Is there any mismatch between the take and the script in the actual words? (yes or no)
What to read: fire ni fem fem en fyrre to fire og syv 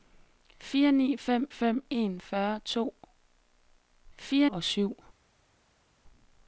no